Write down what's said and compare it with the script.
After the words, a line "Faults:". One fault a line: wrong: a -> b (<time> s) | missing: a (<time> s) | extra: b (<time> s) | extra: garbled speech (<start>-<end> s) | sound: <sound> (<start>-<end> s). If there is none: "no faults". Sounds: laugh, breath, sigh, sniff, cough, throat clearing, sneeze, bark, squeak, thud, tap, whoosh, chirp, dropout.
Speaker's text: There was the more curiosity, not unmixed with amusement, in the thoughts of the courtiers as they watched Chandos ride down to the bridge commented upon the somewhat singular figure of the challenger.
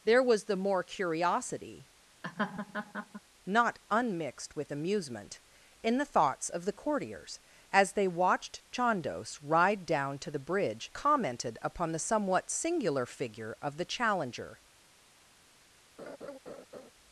There was the more curiosity, not unmixed with amusement, in the thoughts of the courtiers as they watched Chandos ride down to the bridge commented upon the somewhat singular figure of the challenger.
Faults:
sound: laugh (2.2-3.2 s)
sound: laugh (16.0-16.9 s)